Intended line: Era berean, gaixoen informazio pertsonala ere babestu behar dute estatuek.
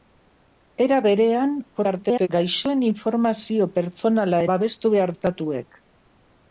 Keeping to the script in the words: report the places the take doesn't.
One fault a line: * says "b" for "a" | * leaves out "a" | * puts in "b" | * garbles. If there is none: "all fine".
* garbles
* leaves out "ere"
* leaves out "dute"